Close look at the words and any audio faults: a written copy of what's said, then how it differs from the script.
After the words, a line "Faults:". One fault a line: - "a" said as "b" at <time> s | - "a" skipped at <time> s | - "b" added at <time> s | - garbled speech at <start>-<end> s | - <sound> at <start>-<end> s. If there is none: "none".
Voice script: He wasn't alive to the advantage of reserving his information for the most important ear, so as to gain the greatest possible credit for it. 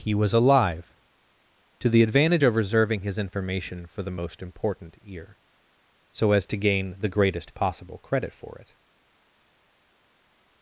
He was alive to the advantage of reserving his information for the most important ear, so as to gain the greatest possible credit for it.
Faults:
- "wasn't" said as "was" at 0.1 s